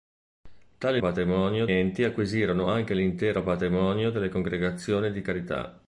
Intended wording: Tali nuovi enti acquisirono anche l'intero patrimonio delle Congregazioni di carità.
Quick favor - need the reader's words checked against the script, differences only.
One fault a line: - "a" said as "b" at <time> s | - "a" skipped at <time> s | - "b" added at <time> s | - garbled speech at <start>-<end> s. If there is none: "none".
- "nuovi" said as "patrimonio" at 1.0 s